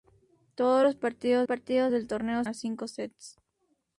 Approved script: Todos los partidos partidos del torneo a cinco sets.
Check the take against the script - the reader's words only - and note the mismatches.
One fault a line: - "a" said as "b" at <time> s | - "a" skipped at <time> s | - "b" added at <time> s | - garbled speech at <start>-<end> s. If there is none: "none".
none